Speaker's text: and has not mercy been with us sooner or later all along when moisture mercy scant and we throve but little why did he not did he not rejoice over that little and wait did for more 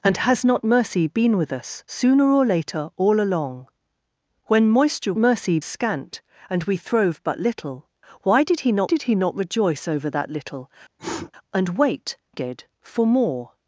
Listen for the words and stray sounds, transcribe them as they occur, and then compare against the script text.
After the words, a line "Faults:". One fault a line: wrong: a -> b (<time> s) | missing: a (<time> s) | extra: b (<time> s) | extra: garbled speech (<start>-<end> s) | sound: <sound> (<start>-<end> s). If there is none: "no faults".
and has not mercy been with us sooner or later all along when moisture mercy scant and we throve but little why did he not did he not rejoice over that little and wait did for more
Faults:
sound: sniff (11.0-11.3 s)